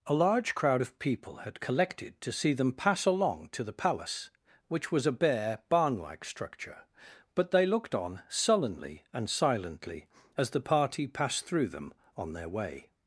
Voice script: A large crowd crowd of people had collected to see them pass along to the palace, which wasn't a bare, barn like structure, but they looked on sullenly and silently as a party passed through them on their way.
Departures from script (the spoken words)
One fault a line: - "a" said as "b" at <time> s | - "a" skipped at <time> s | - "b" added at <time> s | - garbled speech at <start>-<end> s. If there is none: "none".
- "crowd" skipped at 0.8 s
- "wasn't" said as "was" at 4.9 s
- "a" said as "the" at 10.5 s